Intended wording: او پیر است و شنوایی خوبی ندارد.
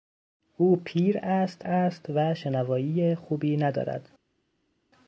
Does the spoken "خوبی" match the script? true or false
true